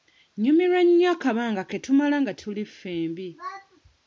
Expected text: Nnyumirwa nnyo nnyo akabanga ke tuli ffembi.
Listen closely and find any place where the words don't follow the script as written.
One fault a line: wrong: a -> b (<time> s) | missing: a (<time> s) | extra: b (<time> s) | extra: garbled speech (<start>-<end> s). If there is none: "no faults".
missing: nnyo (1.1 s)
extra: tumala nga (1.9 s)